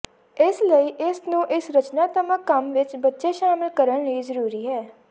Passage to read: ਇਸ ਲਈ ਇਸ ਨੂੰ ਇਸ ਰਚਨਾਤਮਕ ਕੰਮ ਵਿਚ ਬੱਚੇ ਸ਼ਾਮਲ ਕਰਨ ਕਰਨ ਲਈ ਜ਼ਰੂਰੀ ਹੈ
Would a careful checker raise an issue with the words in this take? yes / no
yes